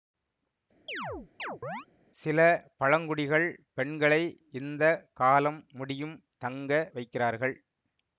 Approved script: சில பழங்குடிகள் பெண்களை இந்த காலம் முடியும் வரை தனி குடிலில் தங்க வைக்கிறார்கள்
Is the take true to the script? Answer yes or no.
no